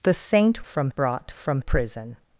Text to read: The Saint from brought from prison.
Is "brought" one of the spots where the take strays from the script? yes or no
no